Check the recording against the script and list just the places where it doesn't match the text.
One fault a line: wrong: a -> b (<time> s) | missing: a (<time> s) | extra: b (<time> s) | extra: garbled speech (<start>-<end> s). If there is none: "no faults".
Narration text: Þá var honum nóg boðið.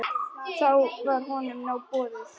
no faults